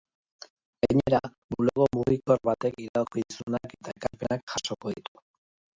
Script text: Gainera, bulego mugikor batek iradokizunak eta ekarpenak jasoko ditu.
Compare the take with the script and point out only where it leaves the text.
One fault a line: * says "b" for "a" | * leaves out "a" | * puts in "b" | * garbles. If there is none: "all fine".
all fine